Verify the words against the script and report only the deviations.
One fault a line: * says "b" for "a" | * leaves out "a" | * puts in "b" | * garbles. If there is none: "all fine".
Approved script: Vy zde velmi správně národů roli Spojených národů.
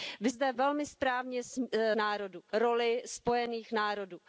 all fine